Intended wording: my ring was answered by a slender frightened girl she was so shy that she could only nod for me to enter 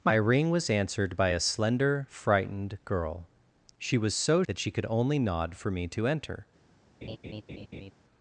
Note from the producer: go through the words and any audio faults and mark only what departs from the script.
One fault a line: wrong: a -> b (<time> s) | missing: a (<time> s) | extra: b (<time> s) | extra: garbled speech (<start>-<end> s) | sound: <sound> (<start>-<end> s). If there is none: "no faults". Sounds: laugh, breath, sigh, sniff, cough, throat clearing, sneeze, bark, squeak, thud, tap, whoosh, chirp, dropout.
missing: shy (4.4 s)
sound: laugh (7.0-7.9 s)